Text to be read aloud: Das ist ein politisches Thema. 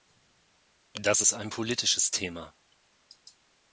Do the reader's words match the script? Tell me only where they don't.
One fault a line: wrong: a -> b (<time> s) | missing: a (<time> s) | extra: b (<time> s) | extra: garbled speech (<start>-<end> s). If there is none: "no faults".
no faults